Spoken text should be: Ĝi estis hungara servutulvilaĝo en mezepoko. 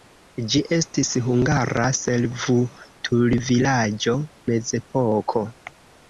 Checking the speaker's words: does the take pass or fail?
fail